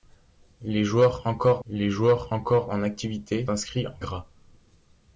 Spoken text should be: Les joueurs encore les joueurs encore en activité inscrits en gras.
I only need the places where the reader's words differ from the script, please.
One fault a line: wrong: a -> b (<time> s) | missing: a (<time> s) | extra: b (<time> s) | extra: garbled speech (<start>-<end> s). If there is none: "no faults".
no faults